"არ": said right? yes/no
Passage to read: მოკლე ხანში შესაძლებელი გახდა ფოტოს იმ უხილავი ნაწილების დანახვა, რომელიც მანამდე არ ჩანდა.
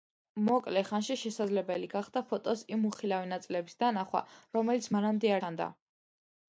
no